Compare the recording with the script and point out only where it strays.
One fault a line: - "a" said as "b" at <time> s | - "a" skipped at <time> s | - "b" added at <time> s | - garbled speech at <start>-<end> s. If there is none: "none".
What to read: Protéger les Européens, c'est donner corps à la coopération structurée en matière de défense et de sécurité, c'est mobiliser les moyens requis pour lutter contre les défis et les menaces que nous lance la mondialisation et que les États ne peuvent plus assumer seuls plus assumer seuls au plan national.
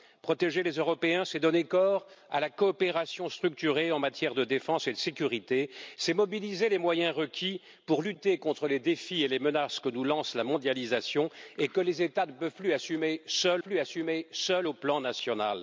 none